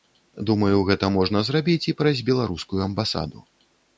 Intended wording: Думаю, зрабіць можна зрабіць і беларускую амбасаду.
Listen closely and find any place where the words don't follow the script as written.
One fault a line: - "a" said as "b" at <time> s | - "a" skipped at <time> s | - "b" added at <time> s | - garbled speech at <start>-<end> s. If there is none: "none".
- "зрабіць" said as "гэта" at 0.9 s
- "праз" added at 2.0 s